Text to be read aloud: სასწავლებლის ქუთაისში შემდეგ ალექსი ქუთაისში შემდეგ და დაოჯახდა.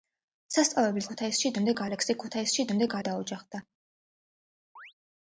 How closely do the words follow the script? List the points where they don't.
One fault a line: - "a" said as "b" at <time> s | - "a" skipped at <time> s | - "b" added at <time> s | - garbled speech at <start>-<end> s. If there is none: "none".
none